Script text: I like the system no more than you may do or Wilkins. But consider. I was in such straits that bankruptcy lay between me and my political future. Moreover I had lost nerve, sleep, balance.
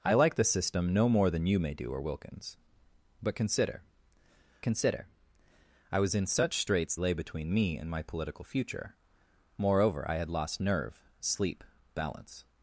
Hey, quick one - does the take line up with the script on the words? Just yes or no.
no